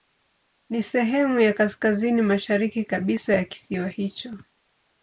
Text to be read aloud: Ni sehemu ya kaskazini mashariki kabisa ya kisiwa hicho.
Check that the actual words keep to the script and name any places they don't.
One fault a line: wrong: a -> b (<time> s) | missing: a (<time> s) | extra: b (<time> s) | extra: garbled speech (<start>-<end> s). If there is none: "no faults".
no faults